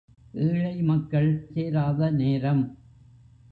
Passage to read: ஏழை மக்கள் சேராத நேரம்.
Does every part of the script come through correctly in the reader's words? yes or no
yes